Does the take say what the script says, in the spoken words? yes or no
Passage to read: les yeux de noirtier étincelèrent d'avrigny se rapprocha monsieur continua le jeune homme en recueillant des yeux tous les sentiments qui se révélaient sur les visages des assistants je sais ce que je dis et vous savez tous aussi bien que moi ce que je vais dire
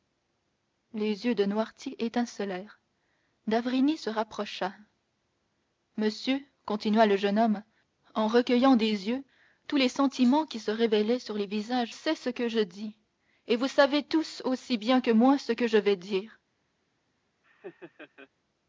no